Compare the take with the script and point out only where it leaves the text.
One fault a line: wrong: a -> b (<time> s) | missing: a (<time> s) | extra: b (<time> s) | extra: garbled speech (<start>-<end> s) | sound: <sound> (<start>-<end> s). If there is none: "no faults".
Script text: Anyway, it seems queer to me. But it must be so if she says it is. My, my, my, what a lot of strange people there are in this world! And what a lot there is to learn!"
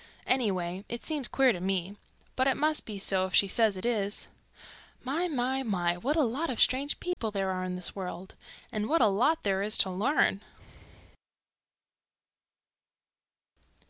sound: dropout (7.1-7.2 s)